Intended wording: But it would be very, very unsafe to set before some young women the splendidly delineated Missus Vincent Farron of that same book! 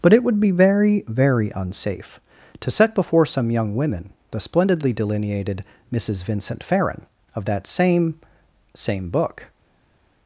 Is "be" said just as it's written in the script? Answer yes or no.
yes